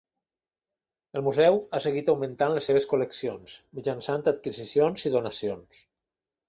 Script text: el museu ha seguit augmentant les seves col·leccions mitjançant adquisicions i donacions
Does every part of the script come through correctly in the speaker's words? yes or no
yes